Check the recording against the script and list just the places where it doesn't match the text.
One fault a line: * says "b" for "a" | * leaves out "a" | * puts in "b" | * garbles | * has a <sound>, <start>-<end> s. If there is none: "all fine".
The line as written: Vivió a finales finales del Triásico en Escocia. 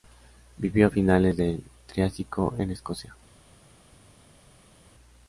* leaves out "finales"